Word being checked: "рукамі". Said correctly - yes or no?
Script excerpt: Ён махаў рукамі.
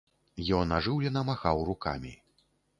yes